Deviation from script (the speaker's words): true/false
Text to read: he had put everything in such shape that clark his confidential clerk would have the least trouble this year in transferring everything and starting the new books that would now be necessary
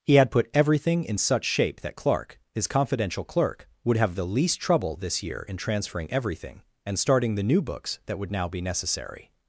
false